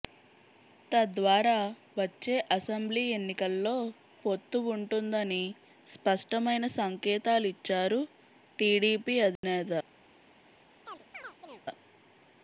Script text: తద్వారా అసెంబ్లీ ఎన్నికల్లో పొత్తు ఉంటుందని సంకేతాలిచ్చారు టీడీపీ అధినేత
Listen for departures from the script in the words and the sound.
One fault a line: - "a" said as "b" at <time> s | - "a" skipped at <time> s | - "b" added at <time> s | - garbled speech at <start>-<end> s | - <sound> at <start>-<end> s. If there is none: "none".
- "వచ్చే" added at 2.0 s
- "స్పష్టమైన" added at 5.9 s
- dropout at 9.4-9.4 s
- chirp at 10.9-11.6 s